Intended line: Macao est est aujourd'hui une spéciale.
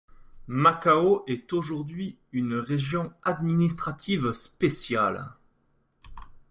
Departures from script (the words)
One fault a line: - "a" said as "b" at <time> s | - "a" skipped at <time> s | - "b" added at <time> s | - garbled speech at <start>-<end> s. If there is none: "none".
- "est" skipped at 1.5 s
- "région administrative" added at 2.5 s